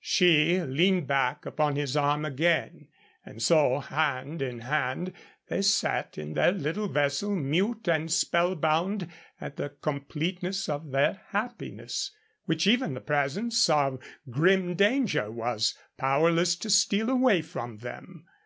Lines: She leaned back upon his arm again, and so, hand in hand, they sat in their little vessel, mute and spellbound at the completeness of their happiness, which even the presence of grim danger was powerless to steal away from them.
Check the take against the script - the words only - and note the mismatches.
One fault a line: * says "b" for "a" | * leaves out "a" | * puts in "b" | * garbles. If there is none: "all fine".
all fine